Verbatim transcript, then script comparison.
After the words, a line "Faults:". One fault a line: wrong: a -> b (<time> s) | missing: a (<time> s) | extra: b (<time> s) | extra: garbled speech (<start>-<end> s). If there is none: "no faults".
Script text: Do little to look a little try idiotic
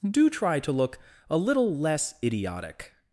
Do try to look a little less idiotic
Faults:
wrong: little -> try (0.3 s)
wrong: try -> less (1.8 s)